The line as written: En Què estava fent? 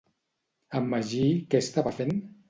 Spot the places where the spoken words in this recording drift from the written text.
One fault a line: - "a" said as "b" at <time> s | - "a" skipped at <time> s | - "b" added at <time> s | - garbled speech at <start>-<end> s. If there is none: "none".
- "Magí" added at 0.9 s